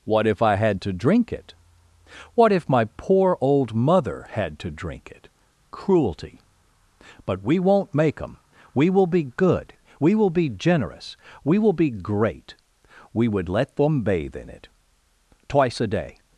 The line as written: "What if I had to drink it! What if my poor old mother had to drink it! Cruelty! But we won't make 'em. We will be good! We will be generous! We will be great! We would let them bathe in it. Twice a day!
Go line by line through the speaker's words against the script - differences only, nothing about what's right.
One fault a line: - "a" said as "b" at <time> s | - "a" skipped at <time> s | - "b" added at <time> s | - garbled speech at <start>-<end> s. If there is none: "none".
none